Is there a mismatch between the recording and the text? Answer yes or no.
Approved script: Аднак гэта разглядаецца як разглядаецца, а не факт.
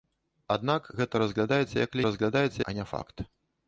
no